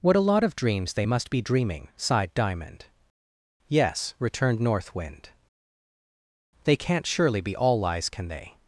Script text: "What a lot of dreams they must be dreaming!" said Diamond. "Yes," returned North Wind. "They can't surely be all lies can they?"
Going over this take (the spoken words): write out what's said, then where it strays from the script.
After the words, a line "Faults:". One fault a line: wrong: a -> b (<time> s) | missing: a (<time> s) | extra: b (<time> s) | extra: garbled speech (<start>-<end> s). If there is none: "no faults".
"What a lot of dreams they must be dreaming!" sighed Diamond. "Yes," returned North Wind. "They can't surely be all lies can they?"
Faults:
wrong: said -> sighed (2.0 s)